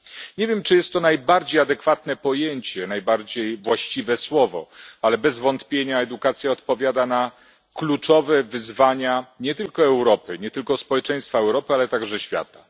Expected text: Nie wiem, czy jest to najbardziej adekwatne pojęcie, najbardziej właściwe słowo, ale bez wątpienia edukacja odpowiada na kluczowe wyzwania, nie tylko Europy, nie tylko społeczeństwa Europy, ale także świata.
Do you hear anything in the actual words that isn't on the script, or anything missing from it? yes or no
no